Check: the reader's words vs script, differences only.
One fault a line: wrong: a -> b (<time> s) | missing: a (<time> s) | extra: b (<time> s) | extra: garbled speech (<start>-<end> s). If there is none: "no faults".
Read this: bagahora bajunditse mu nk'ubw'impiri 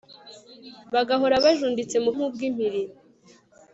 no faults